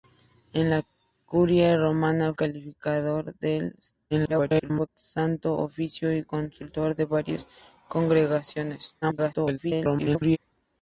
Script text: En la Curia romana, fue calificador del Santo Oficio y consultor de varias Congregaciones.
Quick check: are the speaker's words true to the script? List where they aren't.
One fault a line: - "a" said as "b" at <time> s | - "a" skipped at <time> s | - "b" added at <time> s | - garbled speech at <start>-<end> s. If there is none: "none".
- "fue" skipped at 2.3 s
- garbled speech at 4.1-4.9 s
- garbled speech at 9.0-10.4 s